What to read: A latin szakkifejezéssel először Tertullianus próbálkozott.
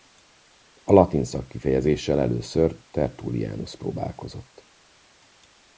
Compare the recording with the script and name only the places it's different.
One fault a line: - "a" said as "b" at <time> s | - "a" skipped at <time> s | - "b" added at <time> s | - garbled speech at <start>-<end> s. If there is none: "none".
none